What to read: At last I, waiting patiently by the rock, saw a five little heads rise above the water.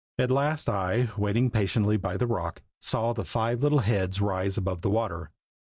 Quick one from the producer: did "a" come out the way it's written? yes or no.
no